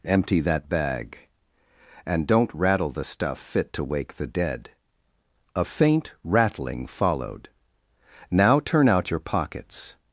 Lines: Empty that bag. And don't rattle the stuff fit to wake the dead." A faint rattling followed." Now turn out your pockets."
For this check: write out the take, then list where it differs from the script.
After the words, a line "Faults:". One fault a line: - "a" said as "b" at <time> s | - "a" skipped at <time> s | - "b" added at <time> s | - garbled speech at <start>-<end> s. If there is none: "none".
Empty that bag. And don't rattle the stuff fit to wake the dead." A faint rattling followed." Now turn out your pockets."
Faults:
none